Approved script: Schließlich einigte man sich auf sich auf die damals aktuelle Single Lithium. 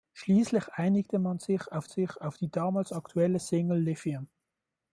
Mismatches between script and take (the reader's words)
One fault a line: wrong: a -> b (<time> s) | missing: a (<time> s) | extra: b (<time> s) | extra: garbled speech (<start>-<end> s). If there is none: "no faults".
no faults